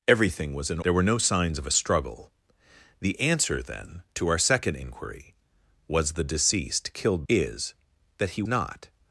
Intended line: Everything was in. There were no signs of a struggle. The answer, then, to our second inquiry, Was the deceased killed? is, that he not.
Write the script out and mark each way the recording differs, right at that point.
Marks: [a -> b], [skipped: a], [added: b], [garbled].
Everything was in. There were no signs of a struggle. The answer, then, to our second inquiry, Was the deceased killed? is, that he not.